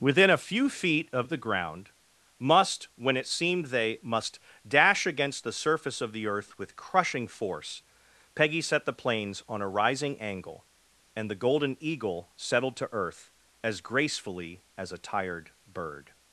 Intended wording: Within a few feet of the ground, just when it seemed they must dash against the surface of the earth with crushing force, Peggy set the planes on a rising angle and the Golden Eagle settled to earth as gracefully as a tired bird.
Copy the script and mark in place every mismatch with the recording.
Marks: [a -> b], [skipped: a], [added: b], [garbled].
Within a few feet of the ground, [just -> must] when it seemed they must dash against the surface of the earth with crushing force, Peggy set the planes on a rising angle and the Golden Eagle settled to earth as gracefully as a tired bird.